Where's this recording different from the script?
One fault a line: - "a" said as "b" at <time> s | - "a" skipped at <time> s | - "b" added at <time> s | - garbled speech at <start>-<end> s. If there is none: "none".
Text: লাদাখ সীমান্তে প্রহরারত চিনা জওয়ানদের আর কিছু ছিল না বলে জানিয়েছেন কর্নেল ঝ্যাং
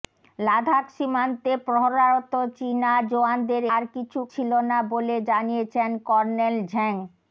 none